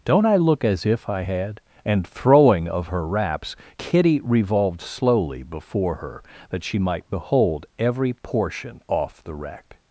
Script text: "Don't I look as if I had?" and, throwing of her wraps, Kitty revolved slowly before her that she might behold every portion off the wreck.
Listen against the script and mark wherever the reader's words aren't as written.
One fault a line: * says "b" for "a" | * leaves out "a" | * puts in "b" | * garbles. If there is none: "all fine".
all fine